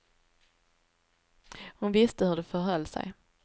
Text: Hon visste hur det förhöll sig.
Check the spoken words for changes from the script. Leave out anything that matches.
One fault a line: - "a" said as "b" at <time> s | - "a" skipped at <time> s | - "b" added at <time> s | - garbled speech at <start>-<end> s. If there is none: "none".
none